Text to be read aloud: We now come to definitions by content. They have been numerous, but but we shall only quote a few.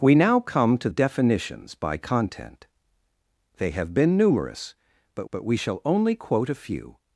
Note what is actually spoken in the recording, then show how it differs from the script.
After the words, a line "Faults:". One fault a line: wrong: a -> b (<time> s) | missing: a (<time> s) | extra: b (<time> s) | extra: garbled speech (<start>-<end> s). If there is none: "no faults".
We now come to definitions by content. They have been numerous, but but we shall only quote a few.
Faults:
no faults